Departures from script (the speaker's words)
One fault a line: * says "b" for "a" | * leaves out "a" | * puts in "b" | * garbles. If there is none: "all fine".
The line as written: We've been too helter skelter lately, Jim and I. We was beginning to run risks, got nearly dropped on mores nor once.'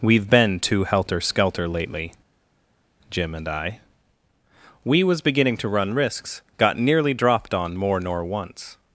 * says "more" for "mores"